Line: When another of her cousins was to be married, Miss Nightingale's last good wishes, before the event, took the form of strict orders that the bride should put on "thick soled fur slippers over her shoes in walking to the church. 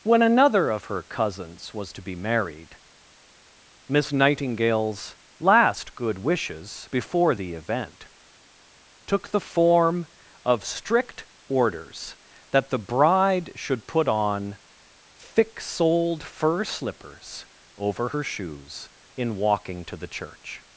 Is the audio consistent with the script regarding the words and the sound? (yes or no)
yes